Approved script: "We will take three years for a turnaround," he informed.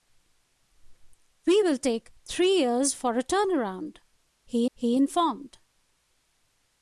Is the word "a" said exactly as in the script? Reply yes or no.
yes